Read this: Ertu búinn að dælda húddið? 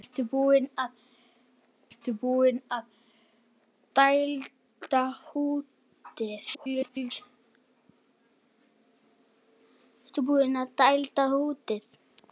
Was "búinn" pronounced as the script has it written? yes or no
yes